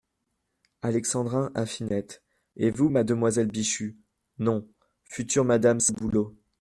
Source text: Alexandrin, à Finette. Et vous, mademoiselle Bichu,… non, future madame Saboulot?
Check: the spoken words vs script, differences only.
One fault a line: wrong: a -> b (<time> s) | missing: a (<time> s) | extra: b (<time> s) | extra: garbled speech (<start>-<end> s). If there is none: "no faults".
no faults